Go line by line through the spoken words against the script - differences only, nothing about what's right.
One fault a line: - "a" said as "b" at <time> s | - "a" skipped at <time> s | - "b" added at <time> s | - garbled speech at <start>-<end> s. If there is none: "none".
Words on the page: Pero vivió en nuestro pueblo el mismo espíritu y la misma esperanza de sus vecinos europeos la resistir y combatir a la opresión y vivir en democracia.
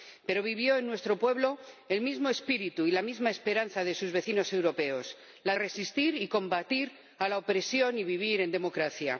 none